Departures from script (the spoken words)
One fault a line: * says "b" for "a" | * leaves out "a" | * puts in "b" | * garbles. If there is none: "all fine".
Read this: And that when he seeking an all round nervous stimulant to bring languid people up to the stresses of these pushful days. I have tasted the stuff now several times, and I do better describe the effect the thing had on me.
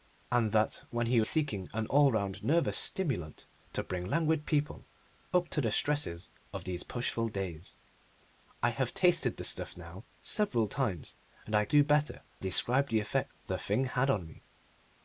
all fine